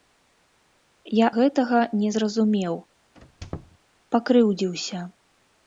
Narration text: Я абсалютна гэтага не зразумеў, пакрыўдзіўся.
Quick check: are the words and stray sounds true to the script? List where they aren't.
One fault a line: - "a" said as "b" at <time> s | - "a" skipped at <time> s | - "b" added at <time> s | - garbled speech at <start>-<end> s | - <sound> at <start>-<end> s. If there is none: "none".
- "абсалютна" skipped at 1.3 s
- squeak at 3.1-3.8 s